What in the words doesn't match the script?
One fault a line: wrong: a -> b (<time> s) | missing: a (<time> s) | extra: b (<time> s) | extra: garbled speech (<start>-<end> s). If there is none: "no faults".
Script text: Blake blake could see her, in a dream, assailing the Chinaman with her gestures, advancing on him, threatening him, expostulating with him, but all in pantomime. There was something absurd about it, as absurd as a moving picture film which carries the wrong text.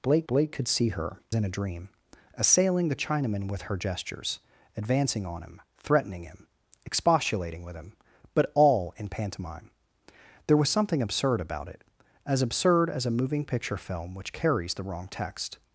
no faults